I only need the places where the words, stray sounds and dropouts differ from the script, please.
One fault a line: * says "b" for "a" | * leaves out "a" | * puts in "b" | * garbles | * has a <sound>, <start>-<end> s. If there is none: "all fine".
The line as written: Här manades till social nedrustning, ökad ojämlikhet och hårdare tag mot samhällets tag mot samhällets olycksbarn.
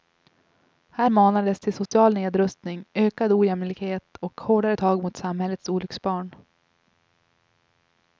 * has a dropout, 1.9-1.9 s
* leaves out "tag mot samhällets"